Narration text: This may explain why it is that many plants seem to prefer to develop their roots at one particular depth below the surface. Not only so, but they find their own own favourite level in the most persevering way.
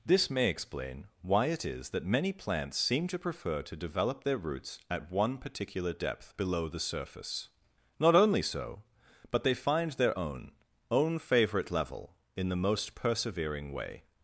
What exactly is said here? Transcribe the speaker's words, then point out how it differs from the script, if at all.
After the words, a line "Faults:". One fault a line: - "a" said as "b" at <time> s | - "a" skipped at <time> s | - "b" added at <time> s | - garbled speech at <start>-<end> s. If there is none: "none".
This may explain why it is that many plants seem to prefer to develop their roots at one particular depth below the surface. Not only so, but they find their own own favourite level in the most persevering way.
Faults:
none